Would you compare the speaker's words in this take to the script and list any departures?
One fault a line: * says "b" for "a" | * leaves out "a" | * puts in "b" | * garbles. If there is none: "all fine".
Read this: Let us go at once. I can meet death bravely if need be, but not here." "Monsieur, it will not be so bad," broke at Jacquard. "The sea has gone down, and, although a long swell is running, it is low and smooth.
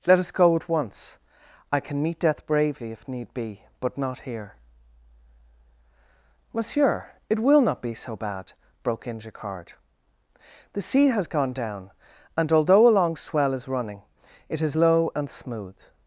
* says "in" for "at"